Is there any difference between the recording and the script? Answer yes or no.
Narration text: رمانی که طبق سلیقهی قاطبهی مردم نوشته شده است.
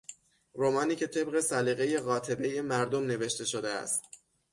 no